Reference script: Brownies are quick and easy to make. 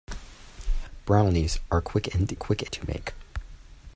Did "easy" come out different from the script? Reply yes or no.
yes